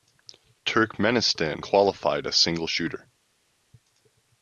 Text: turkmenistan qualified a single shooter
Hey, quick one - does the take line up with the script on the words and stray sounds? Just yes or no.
yes